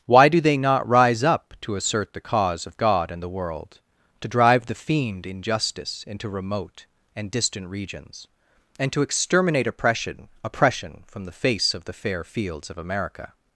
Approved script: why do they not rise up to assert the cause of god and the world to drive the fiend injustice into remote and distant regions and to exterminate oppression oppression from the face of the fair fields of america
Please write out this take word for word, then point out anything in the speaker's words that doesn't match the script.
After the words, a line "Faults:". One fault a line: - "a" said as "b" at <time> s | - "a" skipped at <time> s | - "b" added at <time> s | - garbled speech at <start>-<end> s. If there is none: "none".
why do they not rise up to assert the cause of god and the world to drive the fiend injustice into remote and distant regions and to exterminate oppression oppression from the face of the fair fields of america
Faults:
none